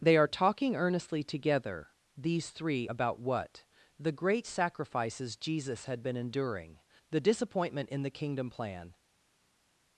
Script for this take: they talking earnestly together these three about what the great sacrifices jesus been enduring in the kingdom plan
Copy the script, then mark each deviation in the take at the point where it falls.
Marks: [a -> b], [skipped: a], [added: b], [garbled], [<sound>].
they [added: are] talking earnestly together these three about what the great sacrifices jesus [added: had] been enduring [added: the disappointment] in the kingdom plan